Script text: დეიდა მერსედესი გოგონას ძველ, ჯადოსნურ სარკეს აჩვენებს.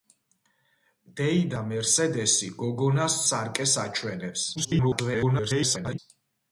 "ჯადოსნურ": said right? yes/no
no